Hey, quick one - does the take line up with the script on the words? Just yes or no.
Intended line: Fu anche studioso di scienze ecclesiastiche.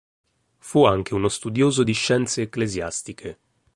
no